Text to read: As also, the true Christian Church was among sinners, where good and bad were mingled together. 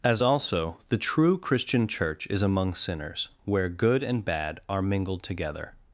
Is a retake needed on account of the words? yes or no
yes